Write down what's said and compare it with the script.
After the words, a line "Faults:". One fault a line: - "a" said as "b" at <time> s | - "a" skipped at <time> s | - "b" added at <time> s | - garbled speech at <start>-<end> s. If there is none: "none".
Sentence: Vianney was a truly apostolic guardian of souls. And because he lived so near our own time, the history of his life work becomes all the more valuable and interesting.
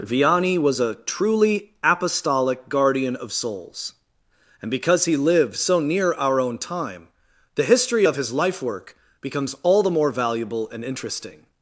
Vianney was a truly apostolic guardian of souls. And because he lived so near our own time, the history of his life work becomes all the more valuable and interesting.
Faults:
none